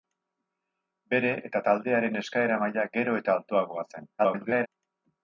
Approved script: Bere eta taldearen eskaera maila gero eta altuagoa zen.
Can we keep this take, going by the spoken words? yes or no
no